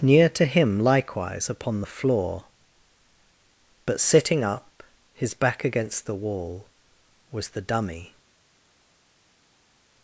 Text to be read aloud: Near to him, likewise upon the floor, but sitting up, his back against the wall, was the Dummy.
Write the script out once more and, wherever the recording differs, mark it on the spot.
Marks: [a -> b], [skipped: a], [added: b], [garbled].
Near to him, likewise upon the floor, but sitting up, his back against the wall, was the Dummy.